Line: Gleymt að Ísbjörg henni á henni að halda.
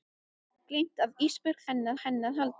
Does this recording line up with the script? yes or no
yes